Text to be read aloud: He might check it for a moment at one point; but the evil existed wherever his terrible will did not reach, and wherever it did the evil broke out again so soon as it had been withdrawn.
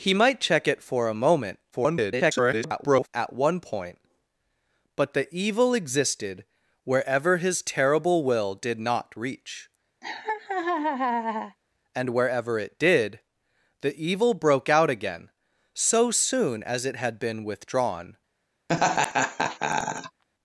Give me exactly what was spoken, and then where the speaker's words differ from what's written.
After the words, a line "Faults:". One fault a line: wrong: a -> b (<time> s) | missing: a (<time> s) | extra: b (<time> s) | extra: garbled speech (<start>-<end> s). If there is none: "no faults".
He might check it for a moment [garbled] at one point; but the evil existed wherever his terrible will did not reach, and wherever it did the evil broke out again so soon as it had been withdrawn.
Faults:
extra: garbled speech (1.7-3.1 s)